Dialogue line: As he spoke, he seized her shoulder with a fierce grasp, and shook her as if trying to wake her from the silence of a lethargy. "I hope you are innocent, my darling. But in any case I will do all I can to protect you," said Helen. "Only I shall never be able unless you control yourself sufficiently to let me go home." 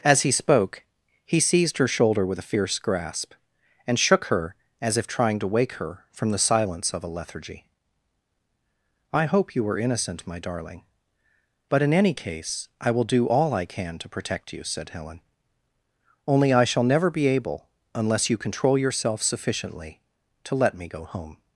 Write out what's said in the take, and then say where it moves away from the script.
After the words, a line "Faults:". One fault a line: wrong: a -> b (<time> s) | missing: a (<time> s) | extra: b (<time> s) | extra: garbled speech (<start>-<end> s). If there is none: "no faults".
As he spoke, he seized her shoulder with a fierce grasp, and shook her as if trying to wake her from the silence of a lethargy. "I hope you were innocent, my darling. But in any case I will do all I can to protect you," said Helen. "Only I shall never be able unless you control yourself sufficiently to let me go home."
Faults:
wrong: are -> were (9.6 s)